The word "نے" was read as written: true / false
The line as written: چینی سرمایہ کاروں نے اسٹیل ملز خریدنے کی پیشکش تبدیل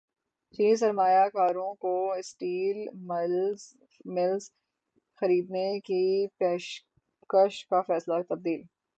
false